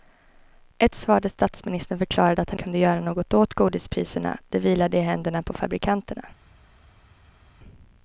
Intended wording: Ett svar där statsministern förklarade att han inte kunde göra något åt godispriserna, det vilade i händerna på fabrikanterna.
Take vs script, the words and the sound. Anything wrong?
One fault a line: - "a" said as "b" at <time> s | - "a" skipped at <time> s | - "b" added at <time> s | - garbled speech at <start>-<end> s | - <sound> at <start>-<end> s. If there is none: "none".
- "inte" skipped at 2.6 s